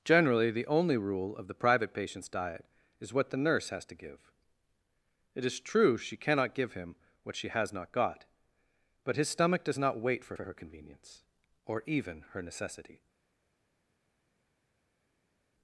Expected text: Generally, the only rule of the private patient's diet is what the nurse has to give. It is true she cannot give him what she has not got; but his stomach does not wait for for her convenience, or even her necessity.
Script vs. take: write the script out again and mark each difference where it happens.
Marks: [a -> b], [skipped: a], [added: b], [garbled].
Generally, the only rule of the private patient's diet is what the nurse has to give. It is true she cannot give him what she has not got; but his stomach does not wait for for her convenience, or even her necessity.